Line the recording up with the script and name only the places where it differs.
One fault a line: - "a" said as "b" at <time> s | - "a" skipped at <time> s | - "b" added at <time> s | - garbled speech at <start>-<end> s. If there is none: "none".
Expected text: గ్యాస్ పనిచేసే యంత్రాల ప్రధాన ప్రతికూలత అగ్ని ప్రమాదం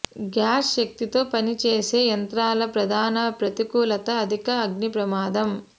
- "శక్తితో" added at 0.7 s
- "అధిక" added at 4.2 s